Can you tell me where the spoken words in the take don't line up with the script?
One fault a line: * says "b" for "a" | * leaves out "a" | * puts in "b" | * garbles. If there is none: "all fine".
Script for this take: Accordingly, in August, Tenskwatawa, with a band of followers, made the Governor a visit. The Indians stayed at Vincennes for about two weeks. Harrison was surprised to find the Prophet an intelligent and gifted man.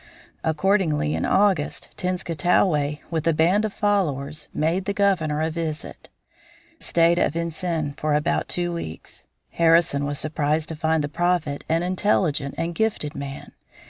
* leaves out "The Indians"